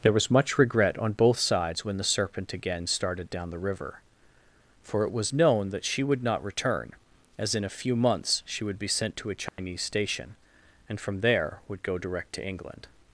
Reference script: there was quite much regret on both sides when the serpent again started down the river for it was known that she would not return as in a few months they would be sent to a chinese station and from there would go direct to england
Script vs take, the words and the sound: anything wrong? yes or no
yes